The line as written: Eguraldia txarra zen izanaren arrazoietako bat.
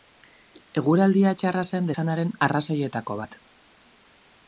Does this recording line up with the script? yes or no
yes